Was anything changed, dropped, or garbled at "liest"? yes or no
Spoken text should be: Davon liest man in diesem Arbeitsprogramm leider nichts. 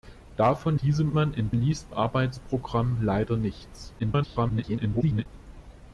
yes